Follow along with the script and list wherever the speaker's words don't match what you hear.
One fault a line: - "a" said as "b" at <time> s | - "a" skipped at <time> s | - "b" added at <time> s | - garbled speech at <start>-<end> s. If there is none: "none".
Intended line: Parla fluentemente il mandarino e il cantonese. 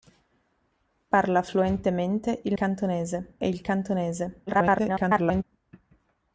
- "mandarino" said as "cantonese" at 2.5 s
- garbled speech at 4.5-5.4 s